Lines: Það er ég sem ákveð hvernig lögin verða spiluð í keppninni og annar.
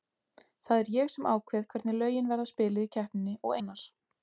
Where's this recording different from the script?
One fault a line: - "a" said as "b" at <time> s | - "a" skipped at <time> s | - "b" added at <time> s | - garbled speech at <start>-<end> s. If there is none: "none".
none